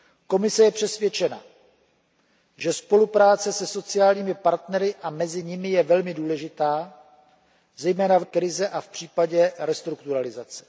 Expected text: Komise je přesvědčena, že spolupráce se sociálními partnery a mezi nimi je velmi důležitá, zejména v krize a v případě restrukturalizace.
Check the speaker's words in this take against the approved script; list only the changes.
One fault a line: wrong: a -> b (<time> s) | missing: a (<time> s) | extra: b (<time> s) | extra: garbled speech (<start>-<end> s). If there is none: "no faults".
no faults